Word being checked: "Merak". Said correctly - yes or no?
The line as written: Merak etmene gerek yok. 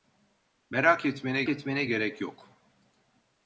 yes